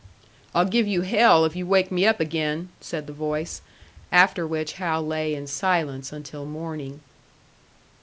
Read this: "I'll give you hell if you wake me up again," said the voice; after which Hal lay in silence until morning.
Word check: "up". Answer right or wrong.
right